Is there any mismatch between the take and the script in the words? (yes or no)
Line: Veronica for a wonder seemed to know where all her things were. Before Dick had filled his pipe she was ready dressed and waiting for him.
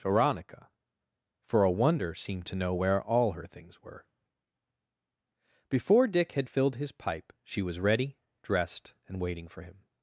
no